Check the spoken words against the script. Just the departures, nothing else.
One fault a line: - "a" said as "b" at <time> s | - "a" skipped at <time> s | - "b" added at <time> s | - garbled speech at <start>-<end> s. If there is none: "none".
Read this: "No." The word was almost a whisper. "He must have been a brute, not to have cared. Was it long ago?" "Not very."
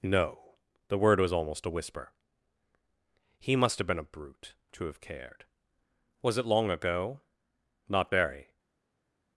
- "not" skipped at 4.5 s